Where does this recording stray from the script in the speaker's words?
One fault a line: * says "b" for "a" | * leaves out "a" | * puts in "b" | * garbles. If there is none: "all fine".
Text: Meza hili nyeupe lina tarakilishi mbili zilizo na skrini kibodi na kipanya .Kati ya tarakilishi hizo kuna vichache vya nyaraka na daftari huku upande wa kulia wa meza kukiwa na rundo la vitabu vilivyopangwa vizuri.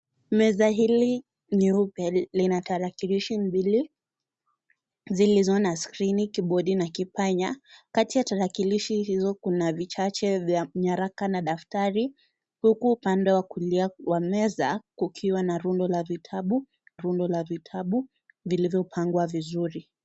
* puts in "rundo la vitabu"